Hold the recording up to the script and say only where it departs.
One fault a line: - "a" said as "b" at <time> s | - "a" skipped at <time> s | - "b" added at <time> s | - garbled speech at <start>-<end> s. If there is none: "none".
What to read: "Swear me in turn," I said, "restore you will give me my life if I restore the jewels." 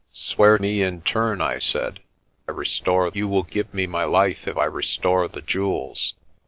none